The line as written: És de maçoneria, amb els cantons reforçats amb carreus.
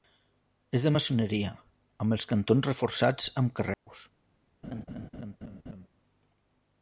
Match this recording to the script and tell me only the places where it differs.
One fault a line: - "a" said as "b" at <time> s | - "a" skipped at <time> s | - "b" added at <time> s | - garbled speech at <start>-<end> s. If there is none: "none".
none